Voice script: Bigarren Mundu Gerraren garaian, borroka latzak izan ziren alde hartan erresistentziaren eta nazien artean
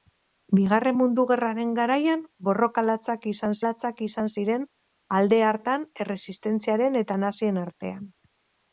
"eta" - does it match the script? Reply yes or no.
yes